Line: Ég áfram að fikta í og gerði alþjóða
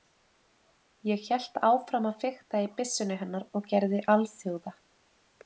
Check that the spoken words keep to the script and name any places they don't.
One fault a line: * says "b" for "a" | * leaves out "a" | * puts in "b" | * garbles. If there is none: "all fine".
* puts in "hélt"
* puts in "byssunni hennar"